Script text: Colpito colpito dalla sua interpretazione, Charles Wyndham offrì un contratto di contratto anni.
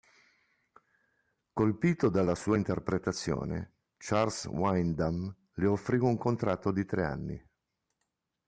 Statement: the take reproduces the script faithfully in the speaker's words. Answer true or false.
false